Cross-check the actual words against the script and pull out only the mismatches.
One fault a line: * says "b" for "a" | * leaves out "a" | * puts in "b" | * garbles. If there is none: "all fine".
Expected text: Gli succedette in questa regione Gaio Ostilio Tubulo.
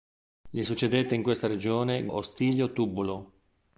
* leaves out "Gaio"